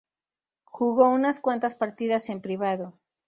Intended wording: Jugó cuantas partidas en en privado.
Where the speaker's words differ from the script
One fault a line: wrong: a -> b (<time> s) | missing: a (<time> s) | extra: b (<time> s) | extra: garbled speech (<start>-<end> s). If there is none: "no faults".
extra: unas (1.1 s)
missing: en (2.4 s)